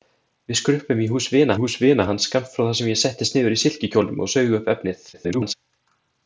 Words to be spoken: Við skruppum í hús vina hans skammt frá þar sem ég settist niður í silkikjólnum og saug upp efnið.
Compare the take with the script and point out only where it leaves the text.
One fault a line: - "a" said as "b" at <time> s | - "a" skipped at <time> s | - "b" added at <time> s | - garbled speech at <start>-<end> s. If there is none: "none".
- "hús vina" added at 1.6 s
- garbled speech at 5.1-5.5 s